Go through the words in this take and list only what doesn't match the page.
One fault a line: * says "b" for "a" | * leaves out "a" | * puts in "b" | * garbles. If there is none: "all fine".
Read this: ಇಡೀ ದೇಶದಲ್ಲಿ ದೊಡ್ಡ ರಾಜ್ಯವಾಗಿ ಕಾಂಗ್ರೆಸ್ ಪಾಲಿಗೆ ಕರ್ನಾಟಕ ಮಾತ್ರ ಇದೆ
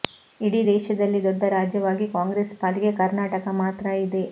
all fine